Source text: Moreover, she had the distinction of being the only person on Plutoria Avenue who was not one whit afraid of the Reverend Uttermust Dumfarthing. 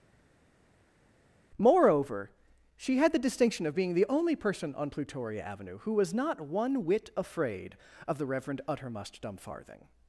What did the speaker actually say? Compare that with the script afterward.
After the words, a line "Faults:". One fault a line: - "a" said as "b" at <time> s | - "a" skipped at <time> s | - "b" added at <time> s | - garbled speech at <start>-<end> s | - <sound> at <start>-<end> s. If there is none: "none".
Moreover, she had the distinction of being the only person on Plutoria Avenue who was not one whit afraid of the Reverend Uttermust Dumfarthing.
Faults:
none